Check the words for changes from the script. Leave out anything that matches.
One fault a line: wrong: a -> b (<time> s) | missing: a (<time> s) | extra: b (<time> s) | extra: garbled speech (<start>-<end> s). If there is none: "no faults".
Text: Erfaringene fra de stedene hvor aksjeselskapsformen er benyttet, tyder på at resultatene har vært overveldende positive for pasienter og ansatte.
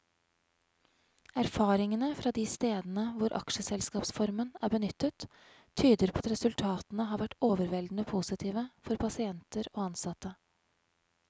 missing: på (6.2 s)